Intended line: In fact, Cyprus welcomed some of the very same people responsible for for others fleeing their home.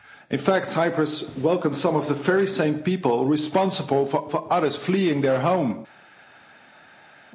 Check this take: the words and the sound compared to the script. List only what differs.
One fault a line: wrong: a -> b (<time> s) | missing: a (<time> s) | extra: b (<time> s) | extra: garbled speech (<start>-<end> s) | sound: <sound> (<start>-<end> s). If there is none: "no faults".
no faults